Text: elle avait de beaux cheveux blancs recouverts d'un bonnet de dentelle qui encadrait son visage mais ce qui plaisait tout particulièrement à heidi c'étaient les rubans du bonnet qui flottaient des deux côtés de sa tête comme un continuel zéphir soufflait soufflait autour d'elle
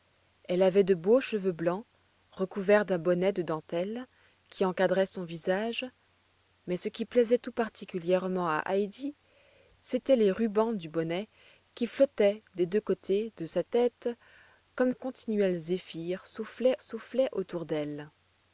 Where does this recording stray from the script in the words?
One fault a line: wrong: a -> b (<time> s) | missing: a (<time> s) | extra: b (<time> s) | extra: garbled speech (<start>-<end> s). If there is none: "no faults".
no faults